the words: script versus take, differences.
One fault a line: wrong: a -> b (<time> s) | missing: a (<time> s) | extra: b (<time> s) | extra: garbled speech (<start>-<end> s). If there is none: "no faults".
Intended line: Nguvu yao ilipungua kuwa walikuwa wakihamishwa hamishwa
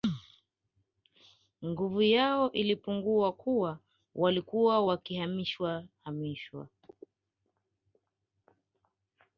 no faults